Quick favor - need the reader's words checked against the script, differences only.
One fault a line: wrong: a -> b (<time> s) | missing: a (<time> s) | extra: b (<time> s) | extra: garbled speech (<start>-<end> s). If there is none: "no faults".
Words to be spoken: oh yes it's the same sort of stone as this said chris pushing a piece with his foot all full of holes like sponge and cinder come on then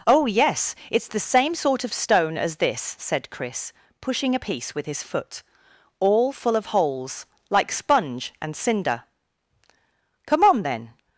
no faults